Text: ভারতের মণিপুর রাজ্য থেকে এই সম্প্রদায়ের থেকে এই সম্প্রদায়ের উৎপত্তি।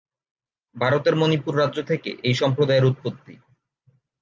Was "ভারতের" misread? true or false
false